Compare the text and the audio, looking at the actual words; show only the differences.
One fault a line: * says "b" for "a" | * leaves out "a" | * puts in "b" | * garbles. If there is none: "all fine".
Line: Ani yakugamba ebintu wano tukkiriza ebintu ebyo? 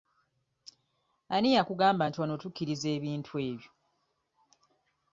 * says "nti" for "ebintu"